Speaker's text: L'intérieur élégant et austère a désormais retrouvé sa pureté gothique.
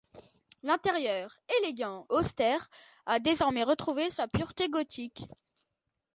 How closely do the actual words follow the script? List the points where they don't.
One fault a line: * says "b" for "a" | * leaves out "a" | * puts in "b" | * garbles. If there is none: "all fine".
* leaves out "et"